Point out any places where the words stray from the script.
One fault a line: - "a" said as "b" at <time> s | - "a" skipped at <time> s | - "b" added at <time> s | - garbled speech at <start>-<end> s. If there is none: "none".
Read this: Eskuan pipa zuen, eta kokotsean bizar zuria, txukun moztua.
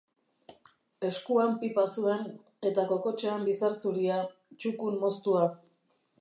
none